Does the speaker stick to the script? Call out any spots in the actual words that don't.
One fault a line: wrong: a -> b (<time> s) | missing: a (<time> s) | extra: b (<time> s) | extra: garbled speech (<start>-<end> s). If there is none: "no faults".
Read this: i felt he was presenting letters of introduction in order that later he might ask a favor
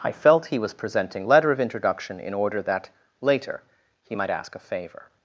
wrong: letters -> letter (1.3 s)